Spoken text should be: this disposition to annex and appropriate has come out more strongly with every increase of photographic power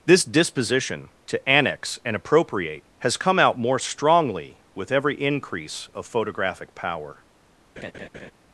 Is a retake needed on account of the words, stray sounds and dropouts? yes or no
yes